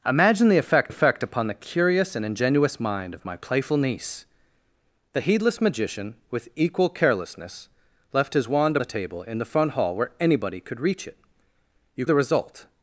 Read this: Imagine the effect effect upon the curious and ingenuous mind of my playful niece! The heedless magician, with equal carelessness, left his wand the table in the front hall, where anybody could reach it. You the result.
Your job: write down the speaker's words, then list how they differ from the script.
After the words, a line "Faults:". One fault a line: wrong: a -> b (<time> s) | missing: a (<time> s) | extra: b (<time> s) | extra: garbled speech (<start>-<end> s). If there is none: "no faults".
Imagine the effect effect upon the curious and ingenuous mind of my playful niece! The heedless magician, with equal carelessness, left his wand the table in the front hall, where anybody could reach it. You the result.
Faults:
no faults